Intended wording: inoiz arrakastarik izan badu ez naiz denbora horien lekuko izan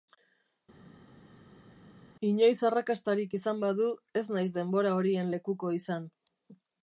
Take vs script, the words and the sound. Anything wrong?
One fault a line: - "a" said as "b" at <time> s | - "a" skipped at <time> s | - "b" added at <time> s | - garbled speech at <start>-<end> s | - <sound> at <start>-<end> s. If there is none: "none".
none